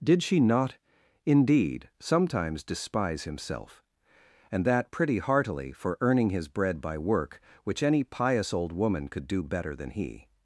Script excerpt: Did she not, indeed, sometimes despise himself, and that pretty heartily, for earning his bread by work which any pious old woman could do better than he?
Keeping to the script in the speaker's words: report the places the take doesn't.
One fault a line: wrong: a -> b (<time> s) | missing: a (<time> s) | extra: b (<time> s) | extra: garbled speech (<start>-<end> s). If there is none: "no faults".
no faults